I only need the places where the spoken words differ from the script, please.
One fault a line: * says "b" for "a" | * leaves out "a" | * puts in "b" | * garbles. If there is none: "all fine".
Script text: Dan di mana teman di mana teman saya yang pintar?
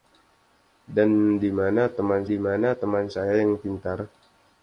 all fine